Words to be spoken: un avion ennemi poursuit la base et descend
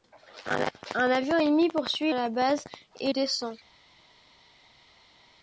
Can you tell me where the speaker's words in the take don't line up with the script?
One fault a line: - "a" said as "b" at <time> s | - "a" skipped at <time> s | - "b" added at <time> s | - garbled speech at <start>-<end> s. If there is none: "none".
none